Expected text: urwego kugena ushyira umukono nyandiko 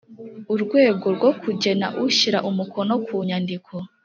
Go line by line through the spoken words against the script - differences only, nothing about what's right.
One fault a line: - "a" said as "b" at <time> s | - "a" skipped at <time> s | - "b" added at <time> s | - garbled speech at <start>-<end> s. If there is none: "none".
- "rwo" added at 1.1 s
- "ku" added at 3.0 s